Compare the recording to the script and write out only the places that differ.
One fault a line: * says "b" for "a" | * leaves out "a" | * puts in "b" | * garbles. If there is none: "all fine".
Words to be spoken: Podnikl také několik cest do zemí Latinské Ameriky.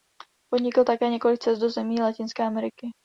all fine